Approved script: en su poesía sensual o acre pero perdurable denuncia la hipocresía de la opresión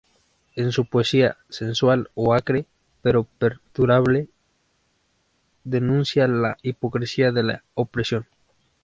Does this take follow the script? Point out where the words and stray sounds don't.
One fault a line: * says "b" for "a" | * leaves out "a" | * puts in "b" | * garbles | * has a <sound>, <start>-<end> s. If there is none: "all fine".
all fine